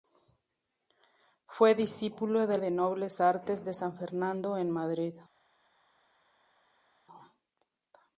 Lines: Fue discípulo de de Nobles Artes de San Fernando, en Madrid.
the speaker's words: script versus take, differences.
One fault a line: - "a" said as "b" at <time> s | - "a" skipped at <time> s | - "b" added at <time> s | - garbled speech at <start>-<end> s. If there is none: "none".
none